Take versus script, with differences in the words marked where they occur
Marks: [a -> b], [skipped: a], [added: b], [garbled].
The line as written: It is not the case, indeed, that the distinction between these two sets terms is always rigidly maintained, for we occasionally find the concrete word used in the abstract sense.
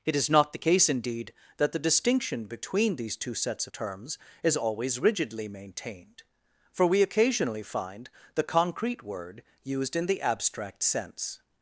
It is not the case, indeed, that the distinction between these two sets terms is always rigidly maintained, for we occasionally find the concrete word used in the abstract sense.